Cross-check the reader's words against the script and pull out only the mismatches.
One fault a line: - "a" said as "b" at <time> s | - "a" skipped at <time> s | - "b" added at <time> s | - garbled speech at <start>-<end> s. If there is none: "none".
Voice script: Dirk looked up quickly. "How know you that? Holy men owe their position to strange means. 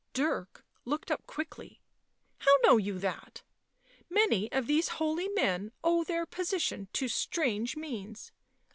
- "Many of these" added at 4.1 s